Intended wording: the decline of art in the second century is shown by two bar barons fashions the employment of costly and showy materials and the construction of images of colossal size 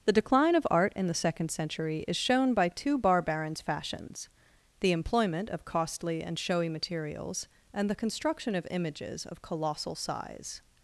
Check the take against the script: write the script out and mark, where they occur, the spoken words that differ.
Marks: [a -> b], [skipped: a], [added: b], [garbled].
the decline of art in the second century is shown by two bar barons fashions the employment of costly and showy materials and the construction of images of colossal size